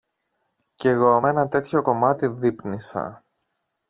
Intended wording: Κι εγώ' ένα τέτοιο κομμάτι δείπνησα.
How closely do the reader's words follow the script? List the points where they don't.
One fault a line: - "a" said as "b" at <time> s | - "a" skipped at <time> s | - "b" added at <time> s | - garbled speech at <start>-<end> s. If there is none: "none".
none